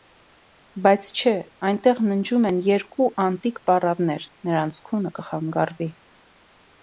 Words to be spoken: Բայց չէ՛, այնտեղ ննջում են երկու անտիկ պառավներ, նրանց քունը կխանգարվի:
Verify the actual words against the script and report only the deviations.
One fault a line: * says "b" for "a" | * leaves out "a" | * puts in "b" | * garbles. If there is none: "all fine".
all fine